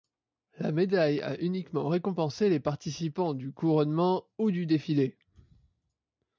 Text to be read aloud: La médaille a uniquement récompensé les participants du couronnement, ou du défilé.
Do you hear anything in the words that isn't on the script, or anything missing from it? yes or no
no